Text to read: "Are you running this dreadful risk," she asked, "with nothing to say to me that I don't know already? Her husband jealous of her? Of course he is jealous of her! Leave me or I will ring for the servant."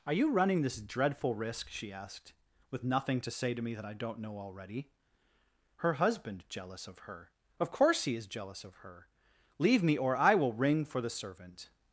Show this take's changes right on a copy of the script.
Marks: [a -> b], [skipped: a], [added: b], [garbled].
"Are you running this dreadful risk," she asked, "with nothing to say to me that I don't know already? Her husband jealous of her? Of course he is jealous of her! Leave me or I will ring for the servant."